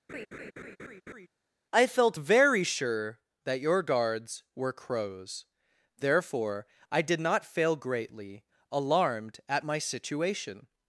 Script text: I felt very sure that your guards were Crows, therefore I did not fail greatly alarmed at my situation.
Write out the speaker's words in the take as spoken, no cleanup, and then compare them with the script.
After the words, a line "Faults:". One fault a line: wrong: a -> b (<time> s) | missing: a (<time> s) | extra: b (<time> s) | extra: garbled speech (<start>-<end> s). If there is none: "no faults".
I felt very sure that your guards were Crows, therefore I did not fail greatly alarmed at my situation.
Faults:
no faults